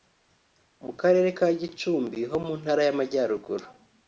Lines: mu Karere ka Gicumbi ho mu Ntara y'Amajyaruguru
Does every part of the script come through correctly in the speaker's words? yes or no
yes